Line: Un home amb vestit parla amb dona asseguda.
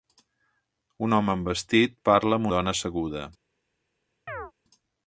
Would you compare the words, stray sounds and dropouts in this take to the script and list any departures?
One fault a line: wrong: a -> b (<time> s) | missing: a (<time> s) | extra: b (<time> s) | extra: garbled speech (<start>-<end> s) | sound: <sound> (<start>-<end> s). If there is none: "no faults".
sound: chirp (4.3-4.5 s)